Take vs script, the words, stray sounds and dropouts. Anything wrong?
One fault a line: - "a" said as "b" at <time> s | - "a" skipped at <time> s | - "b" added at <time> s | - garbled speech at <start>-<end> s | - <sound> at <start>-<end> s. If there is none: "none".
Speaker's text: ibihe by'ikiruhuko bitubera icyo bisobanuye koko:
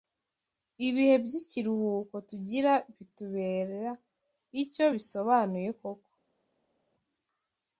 - "tugira" added at 2.3 s